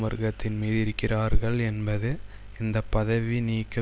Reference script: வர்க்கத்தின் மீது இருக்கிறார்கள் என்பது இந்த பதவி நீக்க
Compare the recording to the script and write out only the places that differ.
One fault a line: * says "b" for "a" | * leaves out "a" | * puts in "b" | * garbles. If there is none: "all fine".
all fine